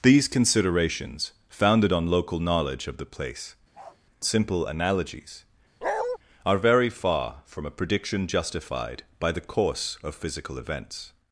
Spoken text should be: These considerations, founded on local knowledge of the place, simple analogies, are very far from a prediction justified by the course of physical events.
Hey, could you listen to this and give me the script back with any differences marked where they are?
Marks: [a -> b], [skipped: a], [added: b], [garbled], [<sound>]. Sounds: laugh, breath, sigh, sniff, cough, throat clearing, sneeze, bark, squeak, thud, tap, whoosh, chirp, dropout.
These considerations, founded on local knowledge of the place, [bark] simple analogies, [bark] are very far from a prediction justified by the course of physical events.